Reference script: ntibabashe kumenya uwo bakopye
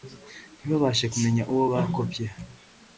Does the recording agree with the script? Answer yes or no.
yes